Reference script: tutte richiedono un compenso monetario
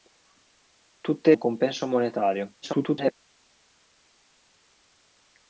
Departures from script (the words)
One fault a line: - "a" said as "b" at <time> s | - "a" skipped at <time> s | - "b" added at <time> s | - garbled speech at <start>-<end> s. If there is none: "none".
- "richiedono" skipped at 1.4 s
- garbled speech at 2.6-3.1 s